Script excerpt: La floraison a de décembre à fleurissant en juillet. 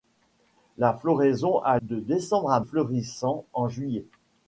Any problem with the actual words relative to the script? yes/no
no